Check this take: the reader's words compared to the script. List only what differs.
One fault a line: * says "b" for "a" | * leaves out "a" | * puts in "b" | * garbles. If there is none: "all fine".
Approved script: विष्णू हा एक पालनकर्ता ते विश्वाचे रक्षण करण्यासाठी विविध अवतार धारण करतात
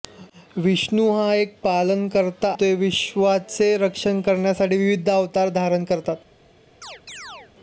all fine